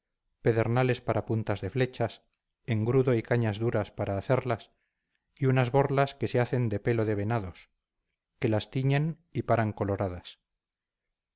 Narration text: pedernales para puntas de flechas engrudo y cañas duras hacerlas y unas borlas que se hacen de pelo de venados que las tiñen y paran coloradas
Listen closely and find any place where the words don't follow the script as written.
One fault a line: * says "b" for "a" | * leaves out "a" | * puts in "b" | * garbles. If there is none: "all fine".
* puts in "para"